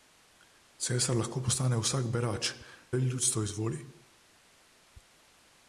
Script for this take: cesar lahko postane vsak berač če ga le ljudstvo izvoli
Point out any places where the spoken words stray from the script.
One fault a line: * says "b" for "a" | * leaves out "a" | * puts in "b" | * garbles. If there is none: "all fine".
* leaves out "če ga"